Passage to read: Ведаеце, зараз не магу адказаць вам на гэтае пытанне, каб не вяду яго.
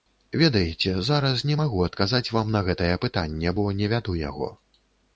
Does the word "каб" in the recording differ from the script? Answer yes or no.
yes